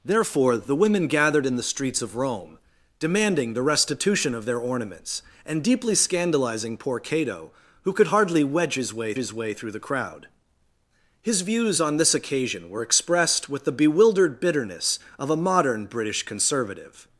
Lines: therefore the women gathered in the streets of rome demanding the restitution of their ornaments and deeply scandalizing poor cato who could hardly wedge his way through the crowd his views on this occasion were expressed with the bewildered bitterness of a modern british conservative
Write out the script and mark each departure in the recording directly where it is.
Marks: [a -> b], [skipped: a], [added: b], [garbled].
therefore the women gathered in the streets of rome demanding the restitution of their ornaments and deeply scandalizing poor cato who could hardly wedge his way [added: his way] through the crowd his views on this occasion were expressed with the bewildered bitterness of a modern british conservative